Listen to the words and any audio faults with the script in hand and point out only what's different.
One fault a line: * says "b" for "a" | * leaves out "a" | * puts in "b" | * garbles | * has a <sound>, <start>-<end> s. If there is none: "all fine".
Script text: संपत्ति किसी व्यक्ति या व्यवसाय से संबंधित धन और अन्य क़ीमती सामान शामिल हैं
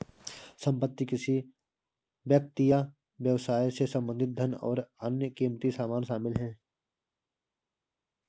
all fine